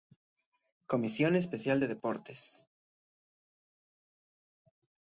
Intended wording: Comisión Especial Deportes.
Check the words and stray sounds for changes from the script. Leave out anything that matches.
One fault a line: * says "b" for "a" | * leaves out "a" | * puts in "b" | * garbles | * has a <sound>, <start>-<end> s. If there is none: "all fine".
* puts in "de"